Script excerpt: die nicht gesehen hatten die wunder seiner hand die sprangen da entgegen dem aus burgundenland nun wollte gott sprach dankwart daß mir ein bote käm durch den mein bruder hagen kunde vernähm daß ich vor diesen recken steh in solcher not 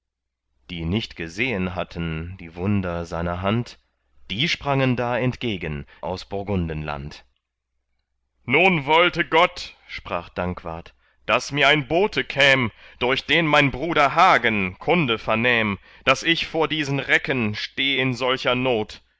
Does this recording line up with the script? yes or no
no